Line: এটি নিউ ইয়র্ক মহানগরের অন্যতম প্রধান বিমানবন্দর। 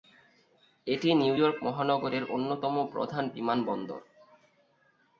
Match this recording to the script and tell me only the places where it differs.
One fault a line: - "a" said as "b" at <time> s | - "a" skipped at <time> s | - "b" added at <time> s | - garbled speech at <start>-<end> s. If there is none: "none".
none